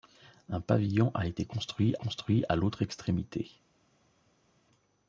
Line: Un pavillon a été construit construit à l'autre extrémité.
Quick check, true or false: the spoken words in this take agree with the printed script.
true